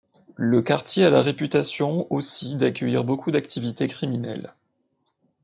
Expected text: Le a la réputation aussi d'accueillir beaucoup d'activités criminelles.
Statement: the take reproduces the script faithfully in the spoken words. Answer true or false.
false